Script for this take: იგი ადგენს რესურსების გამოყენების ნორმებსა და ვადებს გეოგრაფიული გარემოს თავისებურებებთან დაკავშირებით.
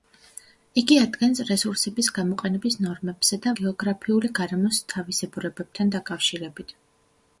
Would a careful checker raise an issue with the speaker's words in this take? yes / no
yes